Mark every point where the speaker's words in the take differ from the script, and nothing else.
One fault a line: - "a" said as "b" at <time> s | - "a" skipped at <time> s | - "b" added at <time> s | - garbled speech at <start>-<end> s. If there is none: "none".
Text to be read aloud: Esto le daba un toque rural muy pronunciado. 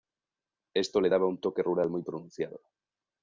none